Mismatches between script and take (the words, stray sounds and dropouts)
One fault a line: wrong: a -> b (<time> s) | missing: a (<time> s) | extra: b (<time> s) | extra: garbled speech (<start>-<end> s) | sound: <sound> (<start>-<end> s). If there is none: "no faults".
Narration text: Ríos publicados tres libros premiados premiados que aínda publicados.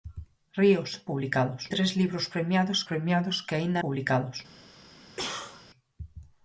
sound: cough (5.2-5.7 s)